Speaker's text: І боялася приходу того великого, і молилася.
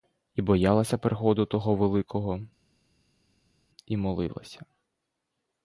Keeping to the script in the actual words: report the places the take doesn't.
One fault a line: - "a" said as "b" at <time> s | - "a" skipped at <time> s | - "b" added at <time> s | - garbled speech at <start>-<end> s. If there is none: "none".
none